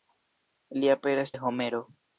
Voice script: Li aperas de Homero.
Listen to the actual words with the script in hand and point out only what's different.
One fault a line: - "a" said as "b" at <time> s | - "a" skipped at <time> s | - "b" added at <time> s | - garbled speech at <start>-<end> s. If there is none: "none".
none